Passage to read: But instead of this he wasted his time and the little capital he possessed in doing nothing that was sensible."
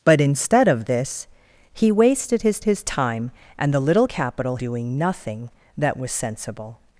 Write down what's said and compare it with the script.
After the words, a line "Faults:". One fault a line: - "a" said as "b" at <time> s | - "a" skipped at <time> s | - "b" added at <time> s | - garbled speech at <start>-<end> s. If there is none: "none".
But instead of this he wasted his his time and the little capital doing nothing that was sensible."
Faults:
- "his" added at 2.6 s
- "he possessed in" skipped at 4.6 s